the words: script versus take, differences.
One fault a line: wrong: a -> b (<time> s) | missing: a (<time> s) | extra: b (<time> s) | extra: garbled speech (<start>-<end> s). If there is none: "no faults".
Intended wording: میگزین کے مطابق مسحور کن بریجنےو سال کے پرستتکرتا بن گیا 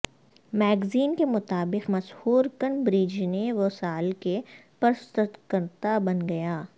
no faults